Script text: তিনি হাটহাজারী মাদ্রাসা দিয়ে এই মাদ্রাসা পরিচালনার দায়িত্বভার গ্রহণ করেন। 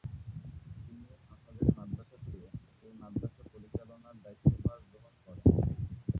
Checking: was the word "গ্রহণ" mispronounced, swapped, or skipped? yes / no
no